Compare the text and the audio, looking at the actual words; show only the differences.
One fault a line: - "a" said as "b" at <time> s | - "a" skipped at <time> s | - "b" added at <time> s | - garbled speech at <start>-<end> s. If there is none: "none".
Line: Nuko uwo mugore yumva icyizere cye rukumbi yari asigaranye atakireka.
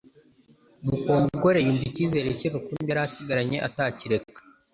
none